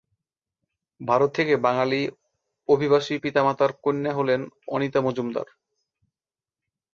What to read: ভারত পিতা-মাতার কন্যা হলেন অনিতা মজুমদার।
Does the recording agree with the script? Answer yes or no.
no